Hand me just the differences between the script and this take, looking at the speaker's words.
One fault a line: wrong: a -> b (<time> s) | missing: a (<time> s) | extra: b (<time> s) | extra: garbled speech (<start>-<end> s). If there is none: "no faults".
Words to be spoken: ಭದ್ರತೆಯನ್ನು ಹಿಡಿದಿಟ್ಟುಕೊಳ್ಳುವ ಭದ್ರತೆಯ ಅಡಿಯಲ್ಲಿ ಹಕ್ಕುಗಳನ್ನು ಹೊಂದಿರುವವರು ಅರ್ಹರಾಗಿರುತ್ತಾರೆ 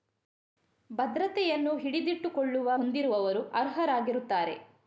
missing: ಭದ್ರತೆಯ ಅಡಿಯಲ್ಲಿ ಹಕ್ಕುಗಳನ್ನು (2.8 s)